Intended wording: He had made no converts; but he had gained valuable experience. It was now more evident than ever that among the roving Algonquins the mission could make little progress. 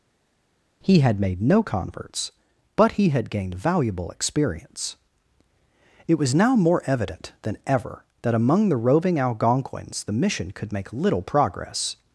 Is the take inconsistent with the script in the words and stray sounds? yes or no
no